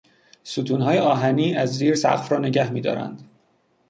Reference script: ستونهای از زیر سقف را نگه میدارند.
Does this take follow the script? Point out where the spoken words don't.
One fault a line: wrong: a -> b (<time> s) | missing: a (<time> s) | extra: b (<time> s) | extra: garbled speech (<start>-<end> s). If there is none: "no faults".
extra: آهنی (1.0 s)